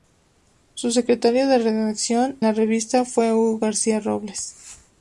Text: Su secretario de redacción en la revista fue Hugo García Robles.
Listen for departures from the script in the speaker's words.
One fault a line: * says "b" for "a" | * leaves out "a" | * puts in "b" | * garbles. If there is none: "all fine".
* leaves out "en"